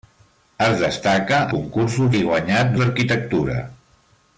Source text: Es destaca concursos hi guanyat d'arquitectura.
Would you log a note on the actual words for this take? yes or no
no